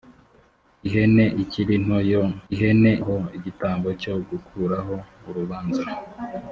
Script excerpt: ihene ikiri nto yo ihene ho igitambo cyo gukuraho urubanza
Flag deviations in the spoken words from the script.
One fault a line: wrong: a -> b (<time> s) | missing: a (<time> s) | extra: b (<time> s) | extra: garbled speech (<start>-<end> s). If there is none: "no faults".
no faults